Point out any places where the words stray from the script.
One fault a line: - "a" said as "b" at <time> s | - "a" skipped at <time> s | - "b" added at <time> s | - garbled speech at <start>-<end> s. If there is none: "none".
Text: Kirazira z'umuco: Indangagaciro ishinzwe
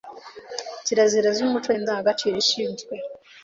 none